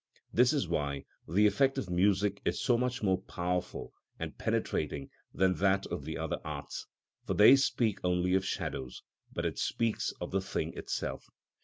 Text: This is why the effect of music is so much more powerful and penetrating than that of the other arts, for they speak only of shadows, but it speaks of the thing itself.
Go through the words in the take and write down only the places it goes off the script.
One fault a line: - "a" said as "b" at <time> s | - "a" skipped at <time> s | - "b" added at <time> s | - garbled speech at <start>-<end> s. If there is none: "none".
none